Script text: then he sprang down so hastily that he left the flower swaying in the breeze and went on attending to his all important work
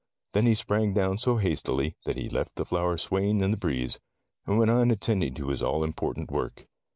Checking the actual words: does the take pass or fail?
pass